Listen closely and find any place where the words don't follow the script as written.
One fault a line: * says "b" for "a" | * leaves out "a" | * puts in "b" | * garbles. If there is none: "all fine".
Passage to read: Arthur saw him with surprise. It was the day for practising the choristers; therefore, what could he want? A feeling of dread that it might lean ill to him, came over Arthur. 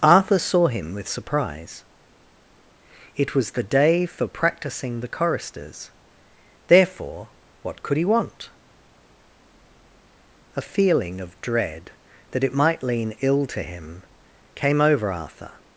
all fine